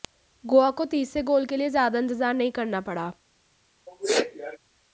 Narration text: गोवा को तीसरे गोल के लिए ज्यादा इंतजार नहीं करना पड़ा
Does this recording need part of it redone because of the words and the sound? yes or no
yes